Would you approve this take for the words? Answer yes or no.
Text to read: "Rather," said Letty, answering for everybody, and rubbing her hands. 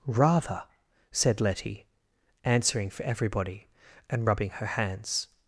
yes